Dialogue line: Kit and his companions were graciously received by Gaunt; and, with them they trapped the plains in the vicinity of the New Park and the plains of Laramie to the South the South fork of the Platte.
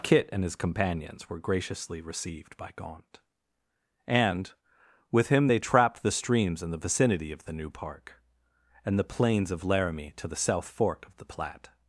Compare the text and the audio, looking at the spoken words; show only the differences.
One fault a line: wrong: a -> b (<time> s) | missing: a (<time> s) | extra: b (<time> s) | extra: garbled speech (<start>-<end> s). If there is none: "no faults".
wrong: them -> him (5.3 s)
wrong: plains -> streams (6.1 s)
missing: the South (10.7 s)